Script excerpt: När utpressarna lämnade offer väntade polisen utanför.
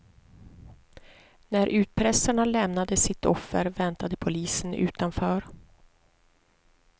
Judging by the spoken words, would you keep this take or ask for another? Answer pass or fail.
fail